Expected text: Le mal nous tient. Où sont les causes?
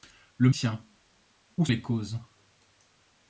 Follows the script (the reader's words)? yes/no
no